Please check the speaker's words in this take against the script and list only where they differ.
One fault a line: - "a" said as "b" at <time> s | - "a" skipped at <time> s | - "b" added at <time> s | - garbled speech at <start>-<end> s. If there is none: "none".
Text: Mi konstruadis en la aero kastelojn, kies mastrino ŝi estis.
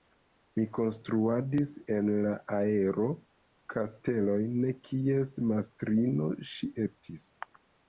none